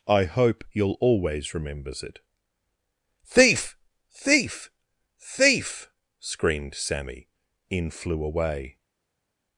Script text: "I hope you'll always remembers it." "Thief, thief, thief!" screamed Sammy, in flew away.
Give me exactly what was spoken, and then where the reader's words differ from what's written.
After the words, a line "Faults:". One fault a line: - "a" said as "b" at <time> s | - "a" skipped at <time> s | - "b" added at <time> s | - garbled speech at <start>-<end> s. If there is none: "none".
"I hope you'll always remembers it." "Thief, thief, thief!" screamed Sammy, in flew away.
Faults:
none